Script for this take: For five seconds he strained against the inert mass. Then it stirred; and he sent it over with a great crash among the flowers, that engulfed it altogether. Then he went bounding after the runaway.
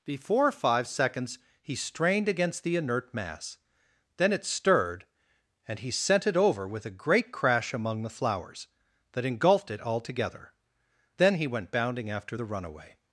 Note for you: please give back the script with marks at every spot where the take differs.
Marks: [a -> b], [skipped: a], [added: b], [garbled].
[For -> Before] five seconds he strained against the inert mass. Then it stirred; and he sent it over with a great crash among the flowers, that engulfed it altogether. Then he went bounding after the runaway.